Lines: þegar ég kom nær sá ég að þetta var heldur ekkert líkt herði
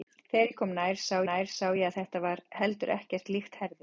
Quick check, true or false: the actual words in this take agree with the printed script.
false